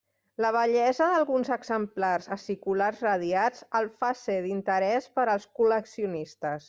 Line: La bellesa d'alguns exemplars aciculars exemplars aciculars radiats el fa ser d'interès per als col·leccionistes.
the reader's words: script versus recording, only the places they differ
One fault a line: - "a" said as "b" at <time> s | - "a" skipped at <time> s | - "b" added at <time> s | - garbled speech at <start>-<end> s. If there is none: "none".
- "exemplars aciculars" skipped at 3.0 s